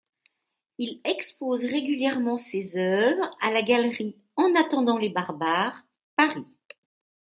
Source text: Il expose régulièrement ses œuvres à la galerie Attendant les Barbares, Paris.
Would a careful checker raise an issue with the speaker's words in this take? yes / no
yes